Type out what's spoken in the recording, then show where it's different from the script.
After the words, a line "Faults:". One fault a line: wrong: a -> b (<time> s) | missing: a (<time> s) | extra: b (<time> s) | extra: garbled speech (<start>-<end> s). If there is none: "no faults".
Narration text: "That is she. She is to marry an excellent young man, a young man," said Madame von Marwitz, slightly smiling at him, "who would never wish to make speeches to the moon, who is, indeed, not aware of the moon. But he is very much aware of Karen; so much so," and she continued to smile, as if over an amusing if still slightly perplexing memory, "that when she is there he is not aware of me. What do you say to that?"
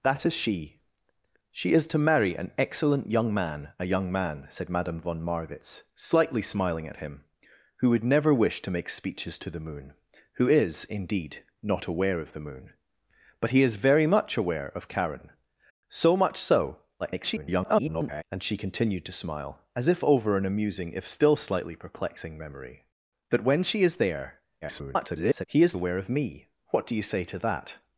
"That is she. She is to marry an excellent young man, a young man," said Madame von Marwitz, slightly smiling at him, "who would never wish to make speeches to the moon, who is, indeed, not aware of the moon. But he is very much aware of Karen; so much so," [garbled] and she continued to smile, as if over an amusing if still slightly perplexing memory, "that when she is there [garbled] he is aware of me. What do you say to that?"
Faults:
extra: garbled speech (17.0-18.2 s)
extra: garbled speech (24.6-25.5 s)
missing: not (25.8 s)